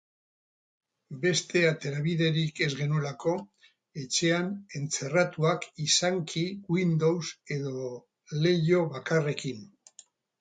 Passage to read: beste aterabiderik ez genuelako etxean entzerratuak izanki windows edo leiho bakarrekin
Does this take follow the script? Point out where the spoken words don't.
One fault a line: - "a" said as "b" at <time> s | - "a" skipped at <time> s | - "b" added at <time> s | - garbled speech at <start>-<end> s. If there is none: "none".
none